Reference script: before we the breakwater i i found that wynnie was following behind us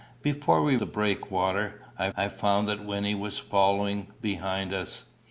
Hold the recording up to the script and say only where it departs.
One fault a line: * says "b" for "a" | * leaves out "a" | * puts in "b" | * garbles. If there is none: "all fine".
all fine